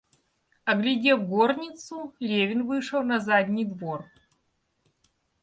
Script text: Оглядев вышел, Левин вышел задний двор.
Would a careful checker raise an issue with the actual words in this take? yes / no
yes